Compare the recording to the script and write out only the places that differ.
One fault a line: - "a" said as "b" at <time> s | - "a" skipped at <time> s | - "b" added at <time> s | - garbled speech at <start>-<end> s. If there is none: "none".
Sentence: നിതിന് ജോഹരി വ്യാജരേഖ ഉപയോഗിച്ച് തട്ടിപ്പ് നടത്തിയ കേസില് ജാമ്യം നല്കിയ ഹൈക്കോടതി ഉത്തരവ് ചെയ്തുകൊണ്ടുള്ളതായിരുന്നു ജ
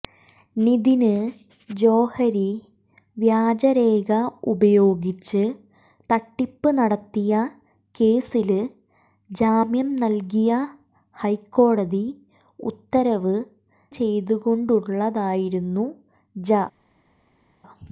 none